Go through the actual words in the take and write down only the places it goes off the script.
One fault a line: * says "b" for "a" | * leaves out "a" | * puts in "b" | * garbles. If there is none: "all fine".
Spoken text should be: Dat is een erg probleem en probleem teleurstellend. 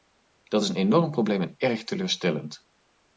* says "enorm" for "erg"
* says "erg" for "probleem"